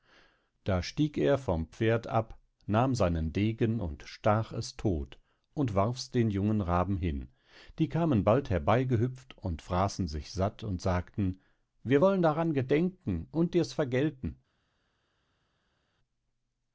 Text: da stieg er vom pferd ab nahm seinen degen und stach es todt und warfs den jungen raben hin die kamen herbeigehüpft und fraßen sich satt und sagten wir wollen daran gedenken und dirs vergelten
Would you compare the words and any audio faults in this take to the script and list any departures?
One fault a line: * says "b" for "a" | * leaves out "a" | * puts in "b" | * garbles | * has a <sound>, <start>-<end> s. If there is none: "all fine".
* puts in "bald"